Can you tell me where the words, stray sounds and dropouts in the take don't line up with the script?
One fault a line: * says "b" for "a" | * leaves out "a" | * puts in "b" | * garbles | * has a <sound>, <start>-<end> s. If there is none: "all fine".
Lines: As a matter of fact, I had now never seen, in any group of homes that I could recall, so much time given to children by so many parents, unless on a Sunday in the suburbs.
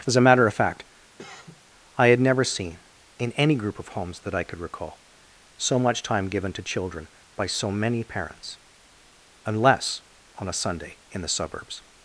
* has a cough, 1.2-1.6 s
* leaves out "now"